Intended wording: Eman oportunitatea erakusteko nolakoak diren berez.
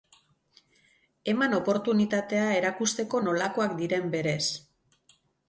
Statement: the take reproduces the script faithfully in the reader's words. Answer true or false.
true